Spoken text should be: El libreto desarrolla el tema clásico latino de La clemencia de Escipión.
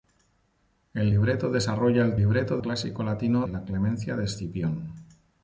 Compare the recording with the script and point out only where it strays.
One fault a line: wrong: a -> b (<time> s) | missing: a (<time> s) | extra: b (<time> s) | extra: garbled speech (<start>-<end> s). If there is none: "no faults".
wrong: tema -> libreto (2.2 s)
missing: de (3.5 s)